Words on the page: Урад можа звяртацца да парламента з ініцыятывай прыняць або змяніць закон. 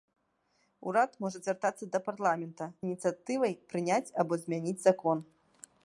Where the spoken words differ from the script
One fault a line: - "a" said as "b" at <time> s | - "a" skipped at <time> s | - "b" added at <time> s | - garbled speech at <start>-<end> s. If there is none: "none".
- "з" skipped at 2.6 s